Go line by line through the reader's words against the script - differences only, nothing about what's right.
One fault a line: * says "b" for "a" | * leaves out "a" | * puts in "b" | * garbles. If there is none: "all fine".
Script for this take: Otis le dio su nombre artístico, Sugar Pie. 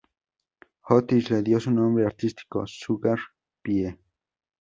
all fine